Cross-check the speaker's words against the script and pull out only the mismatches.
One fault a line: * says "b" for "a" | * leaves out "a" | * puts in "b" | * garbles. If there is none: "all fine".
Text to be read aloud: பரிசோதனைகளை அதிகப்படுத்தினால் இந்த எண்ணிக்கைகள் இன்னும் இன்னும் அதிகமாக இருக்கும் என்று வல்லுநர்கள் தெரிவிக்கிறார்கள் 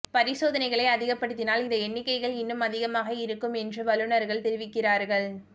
* leaves out "இன்னும்"